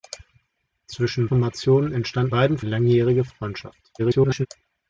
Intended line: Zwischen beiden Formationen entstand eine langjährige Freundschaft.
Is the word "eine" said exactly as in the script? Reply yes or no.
no